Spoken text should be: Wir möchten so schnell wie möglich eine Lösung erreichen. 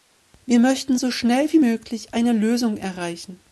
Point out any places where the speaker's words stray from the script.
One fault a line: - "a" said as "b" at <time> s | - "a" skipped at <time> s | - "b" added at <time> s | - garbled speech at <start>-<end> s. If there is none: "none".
none